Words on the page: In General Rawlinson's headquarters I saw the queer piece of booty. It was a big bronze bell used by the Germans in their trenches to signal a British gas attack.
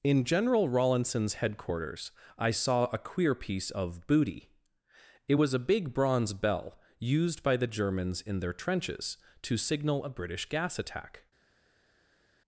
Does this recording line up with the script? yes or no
no